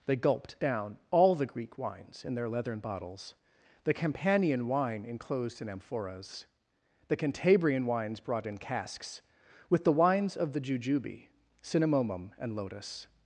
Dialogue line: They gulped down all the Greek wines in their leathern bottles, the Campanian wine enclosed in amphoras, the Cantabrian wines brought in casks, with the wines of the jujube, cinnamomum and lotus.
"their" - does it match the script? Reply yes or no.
yes